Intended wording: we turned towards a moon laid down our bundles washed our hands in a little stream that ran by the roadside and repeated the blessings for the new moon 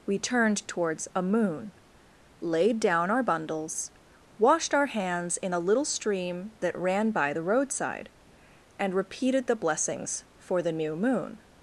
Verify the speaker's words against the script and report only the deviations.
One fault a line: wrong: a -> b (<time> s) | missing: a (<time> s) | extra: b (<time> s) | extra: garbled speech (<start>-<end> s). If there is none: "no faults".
no faults